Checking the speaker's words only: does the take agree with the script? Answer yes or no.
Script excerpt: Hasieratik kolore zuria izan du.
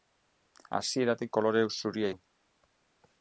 no